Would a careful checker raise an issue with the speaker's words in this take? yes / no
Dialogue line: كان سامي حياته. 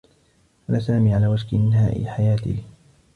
yes